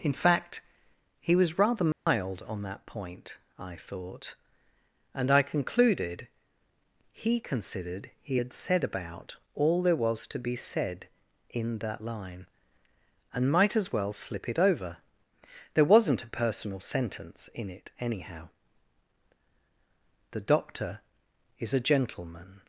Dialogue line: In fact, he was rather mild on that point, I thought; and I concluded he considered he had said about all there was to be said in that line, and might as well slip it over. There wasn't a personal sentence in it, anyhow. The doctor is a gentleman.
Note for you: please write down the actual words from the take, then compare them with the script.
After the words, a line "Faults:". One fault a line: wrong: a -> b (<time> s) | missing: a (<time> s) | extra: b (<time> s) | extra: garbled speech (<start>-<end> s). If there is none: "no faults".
In fact, he was rather mild on that point, I thought; and I concluded he considered he had said about all there was to be said in that line, and might as well slip it over. There wasn't a personal sentence in it, anyhow. The doctor is a gentleman.
Faults:
no faults